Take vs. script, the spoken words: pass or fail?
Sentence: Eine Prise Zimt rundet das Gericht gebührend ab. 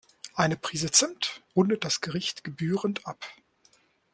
pass